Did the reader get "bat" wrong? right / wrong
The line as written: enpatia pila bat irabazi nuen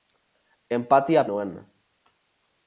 wrong